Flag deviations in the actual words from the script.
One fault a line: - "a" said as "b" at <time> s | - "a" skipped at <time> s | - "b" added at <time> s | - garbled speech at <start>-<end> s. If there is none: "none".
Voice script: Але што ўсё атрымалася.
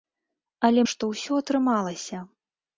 none